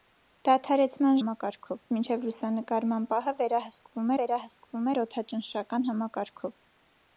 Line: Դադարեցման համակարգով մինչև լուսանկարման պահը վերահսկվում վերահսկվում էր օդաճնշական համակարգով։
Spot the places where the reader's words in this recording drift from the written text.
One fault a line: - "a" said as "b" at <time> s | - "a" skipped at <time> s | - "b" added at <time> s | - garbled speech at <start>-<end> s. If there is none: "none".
none